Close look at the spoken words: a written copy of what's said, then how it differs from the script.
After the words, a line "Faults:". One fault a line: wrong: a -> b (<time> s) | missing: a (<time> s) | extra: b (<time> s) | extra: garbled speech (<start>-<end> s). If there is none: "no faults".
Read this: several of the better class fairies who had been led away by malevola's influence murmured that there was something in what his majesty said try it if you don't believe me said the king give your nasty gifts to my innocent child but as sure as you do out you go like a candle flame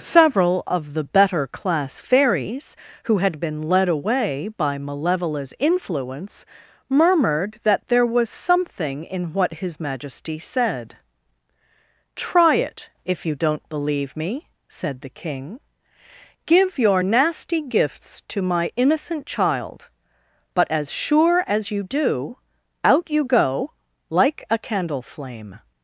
several of the better class fairies who had been led away by malevola's influence murmured that there was something in what his majesty said try it if you don't believe me said the king give your nasty gifts to my innocent child but as sure as you do out you go like a candle flame
Faults:
no faults